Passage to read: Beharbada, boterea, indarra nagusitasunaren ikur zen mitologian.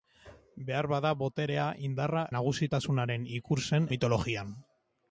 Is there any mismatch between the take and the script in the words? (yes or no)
no